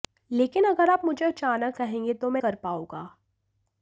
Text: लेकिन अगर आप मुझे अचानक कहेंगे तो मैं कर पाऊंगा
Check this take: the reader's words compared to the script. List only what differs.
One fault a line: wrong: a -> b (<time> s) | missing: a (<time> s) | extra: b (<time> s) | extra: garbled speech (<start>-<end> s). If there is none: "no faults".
no faults